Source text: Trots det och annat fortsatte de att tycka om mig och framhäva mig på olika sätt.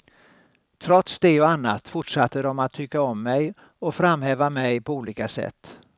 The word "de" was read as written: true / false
true